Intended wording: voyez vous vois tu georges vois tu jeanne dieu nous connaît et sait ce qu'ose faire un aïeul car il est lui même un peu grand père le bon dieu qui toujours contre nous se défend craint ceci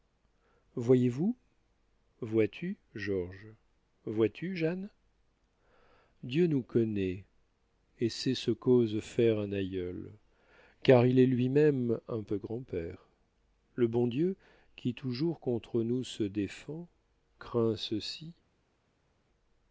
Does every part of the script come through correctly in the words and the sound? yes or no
yes